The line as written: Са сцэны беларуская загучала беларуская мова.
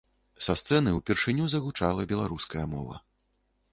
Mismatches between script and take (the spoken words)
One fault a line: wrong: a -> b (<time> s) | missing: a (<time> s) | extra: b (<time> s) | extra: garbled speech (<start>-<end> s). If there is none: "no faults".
wrong: беларуская -> ўпершыню (1.0 s)